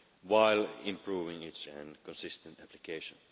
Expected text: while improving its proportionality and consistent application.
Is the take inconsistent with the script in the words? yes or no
yes